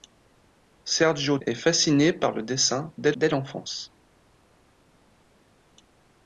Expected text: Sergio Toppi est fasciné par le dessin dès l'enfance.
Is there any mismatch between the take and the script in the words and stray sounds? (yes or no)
yes